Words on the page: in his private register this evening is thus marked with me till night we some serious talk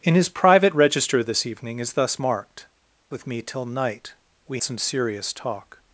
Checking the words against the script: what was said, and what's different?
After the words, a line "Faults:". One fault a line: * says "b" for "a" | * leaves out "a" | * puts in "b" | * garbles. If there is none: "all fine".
in his private register this evening is thus marked with me till night we some serious talk
Faults:
all fine